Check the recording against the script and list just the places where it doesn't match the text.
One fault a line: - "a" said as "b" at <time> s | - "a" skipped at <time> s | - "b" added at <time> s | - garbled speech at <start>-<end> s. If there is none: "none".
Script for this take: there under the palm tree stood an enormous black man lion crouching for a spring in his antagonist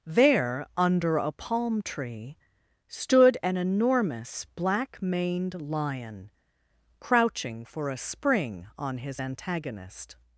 - "the" said as "a" at 1.2 s
- "man" said as "maned" at 5.0 s
- "in" said as "on" at 8.8 s